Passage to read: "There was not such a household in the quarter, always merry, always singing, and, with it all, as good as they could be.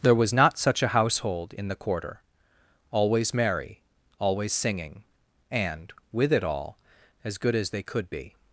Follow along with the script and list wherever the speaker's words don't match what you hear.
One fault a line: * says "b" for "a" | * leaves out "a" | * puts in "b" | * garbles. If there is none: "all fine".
all fine